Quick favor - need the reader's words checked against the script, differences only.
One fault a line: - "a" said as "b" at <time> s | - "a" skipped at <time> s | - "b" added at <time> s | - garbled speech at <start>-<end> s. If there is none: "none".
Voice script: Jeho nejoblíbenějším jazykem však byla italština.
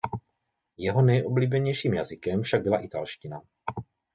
none